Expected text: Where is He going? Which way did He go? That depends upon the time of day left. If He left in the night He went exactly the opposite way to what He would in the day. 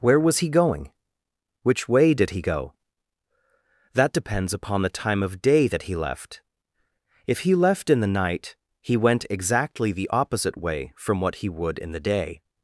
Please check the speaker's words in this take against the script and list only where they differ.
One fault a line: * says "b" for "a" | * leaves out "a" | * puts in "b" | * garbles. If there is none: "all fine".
* says "was" for "is"
* puts in "that He"
* says "from" for "to"